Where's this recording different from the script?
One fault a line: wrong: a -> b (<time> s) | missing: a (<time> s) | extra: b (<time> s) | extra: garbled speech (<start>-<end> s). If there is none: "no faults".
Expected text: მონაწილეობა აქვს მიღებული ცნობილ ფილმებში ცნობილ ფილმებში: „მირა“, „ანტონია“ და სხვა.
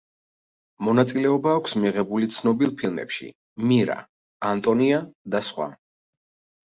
missing: ცნობილ ფილმებში (3.3 s)